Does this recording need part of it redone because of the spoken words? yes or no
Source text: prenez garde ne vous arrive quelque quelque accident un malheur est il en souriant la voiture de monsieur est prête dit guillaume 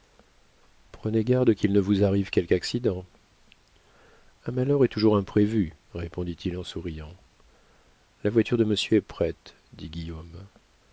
yes